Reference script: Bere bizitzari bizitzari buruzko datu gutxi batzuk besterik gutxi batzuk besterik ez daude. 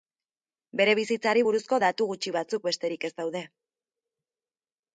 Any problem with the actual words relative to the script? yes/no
yes